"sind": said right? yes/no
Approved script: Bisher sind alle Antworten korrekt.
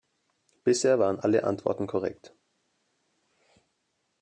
no